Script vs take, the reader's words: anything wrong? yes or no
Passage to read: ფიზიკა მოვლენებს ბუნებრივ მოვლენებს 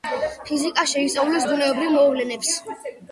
yes